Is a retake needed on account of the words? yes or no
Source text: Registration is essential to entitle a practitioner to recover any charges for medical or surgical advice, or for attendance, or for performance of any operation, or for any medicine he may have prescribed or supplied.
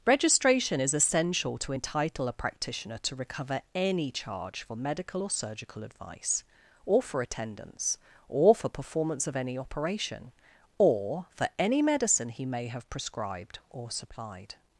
yes